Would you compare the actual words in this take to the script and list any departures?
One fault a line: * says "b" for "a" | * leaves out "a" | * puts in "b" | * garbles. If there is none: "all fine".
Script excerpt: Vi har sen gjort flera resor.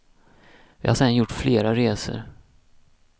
all fine